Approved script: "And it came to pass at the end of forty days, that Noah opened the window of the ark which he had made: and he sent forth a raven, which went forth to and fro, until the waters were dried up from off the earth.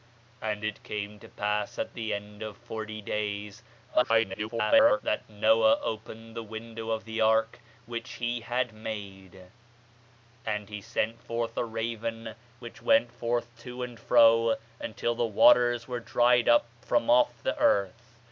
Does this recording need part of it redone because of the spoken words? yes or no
yes